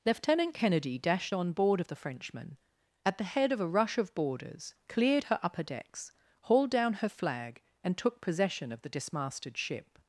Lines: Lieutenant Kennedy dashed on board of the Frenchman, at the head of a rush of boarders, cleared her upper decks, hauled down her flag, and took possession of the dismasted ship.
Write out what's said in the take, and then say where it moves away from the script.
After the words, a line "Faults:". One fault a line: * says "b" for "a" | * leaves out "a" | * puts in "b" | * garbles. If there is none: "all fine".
Lieutenant Kennedy dashed on board of the Frenchman, at the head of a rush of boarders, cleared her upper decks, hauled down her flag, and took possession of the dismasted ship.
Faults:
all fine